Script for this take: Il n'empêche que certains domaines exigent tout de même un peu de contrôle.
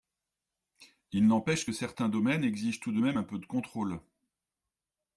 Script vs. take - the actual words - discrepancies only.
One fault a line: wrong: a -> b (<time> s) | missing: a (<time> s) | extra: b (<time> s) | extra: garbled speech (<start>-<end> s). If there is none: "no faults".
no faults